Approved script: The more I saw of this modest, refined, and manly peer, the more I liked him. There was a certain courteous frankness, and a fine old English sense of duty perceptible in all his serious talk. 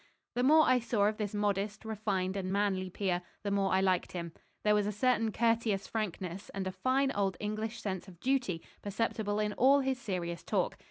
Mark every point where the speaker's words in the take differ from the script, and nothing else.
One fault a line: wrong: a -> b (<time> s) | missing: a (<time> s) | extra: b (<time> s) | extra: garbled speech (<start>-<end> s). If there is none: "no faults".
no faults